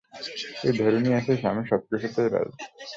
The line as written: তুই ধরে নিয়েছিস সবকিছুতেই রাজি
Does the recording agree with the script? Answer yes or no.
no